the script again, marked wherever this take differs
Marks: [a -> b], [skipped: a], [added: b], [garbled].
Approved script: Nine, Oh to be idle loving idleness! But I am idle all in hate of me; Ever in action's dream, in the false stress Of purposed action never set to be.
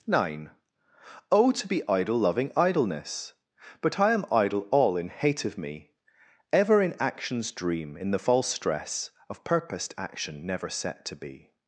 Nine, Oh to be idle loving idleness! But I am idle all in hate of me; Ever in action's dream, in the false stress Of purposed action never set to be.